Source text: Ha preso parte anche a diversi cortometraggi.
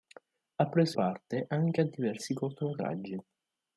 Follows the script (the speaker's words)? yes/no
yes